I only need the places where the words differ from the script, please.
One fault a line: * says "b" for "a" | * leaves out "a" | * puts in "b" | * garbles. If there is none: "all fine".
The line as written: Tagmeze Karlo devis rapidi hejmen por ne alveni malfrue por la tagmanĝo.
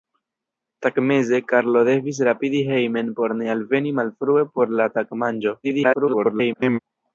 * garbles